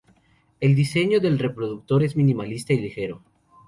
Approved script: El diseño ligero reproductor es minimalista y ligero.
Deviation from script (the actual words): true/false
true